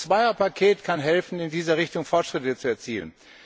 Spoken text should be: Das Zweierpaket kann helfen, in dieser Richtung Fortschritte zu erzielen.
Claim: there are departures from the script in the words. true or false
false